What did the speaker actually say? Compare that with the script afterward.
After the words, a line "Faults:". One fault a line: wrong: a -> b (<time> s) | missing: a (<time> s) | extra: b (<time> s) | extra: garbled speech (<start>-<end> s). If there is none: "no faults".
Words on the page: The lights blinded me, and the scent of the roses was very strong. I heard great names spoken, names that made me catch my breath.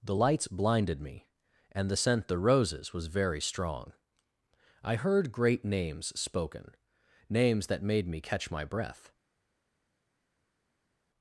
The lights blinded me, and the scent the roses was very strong. I heard great names spoken, names that made me catch my breath.
Faults:
missing: of (2.3 s)